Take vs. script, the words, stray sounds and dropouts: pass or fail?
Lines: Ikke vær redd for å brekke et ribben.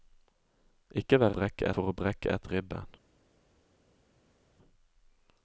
fail